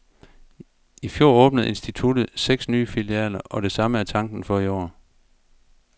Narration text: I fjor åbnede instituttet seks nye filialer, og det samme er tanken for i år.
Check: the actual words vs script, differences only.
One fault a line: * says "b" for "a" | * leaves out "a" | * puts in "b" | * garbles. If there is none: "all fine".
all fine